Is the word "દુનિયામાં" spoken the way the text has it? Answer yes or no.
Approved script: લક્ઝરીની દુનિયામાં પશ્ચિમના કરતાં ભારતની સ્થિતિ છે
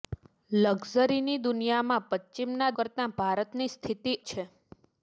yes